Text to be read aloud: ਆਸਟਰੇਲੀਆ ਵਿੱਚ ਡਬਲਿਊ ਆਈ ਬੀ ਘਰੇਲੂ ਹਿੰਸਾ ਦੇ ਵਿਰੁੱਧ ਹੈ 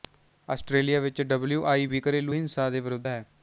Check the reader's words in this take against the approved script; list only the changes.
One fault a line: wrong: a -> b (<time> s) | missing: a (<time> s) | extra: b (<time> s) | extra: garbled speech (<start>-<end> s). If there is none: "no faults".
no faults